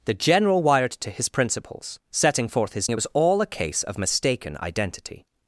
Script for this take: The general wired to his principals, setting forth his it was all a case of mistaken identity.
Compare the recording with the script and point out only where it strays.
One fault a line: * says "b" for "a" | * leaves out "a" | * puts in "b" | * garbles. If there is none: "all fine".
all fine